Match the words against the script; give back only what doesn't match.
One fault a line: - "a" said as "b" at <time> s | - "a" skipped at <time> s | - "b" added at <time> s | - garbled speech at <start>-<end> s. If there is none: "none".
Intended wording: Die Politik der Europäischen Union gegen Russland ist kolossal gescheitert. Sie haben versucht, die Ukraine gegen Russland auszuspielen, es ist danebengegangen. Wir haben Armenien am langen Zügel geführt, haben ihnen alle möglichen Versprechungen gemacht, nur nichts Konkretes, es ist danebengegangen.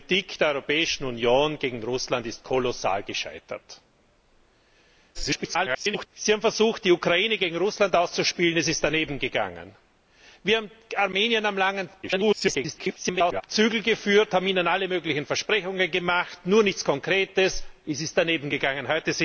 - garbled speech at 5.1-6.1 s
- garbled speech at 12.0-13.4 s